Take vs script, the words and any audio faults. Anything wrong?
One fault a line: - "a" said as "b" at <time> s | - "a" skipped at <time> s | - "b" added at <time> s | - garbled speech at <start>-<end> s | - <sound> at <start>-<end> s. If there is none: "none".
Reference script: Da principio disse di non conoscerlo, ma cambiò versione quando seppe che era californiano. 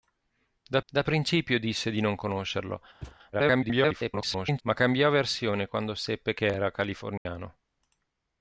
- "da" added at 0.9 s
- thud at 3.0-3.2 s
- garbled speech at 3.3-4.6 s
- dropout at 7.2-7.3 s